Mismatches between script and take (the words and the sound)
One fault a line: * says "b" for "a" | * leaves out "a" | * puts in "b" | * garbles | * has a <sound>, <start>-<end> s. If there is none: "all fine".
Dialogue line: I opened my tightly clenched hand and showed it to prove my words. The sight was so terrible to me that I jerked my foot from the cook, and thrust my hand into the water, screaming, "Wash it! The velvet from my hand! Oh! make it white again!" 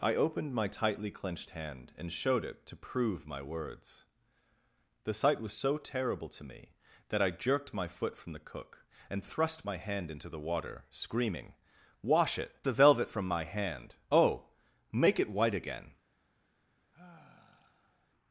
* has a sigh, 16.9-18.1 s